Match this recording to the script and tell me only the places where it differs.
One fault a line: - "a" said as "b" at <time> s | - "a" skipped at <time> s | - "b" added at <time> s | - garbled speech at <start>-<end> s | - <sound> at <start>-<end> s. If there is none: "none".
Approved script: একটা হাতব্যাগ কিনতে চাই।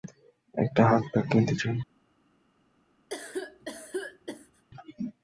- cough at 3.1-4.6 s